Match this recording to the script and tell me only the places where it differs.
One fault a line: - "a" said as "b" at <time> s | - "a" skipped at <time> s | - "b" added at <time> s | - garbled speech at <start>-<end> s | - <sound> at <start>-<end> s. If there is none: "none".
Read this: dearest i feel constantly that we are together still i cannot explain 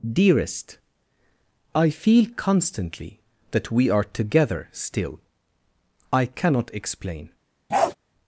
- bark at 7.7-7.9 s